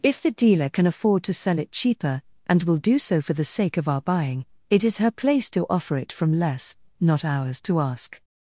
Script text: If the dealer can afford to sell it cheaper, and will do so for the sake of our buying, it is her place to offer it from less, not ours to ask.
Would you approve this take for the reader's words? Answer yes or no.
yes